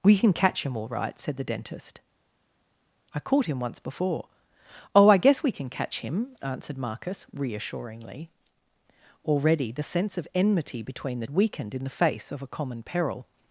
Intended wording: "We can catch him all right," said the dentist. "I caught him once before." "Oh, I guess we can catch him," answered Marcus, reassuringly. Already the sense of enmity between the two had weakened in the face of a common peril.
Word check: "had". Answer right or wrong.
wrong